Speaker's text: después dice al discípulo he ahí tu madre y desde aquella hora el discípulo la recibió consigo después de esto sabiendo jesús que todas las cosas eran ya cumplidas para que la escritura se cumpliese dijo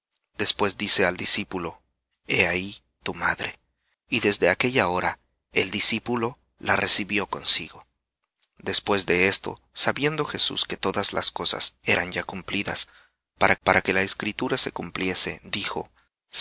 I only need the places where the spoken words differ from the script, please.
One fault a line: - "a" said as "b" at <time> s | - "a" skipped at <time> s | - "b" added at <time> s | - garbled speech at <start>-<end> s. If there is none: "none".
- "para" added at 13.6 s